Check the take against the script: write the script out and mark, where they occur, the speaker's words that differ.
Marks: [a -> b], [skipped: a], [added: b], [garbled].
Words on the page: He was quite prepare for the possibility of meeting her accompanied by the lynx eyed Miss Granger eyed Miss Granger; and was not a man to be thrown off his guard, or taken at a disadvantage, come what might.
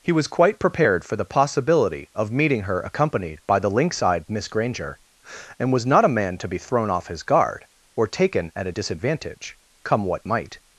He was quite [prepare -> prepared] for the possibility of meeting her accompanied by the lynx eyed Miss Granger [skipped: eyed Miss Granger;] and was not a man to be thrown off his guard, or taken at a disadvantage, come what might.